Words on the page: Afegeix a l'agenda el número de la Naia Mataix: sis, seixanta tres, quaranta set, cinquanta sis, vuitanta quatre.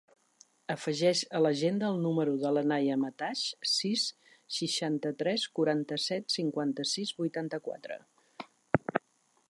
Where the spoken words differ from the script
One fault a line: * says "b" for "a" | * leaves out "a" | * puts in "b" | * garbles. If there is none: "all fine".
all fine